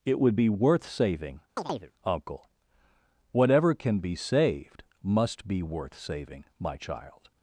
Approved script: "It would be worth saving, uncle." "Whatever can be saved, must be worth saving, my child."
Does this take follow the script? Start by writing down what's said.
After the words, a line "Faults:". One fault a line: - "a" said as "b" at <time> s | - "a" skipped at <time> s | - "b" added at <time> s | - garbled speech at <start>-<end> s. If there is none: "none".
"It would be worth saving, uncle." "Whatever can be saved, must be worth saving, my child."
Faults:
none